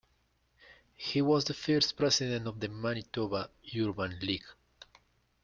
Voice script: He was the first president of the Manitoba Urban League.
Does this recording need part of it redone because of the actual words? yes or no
no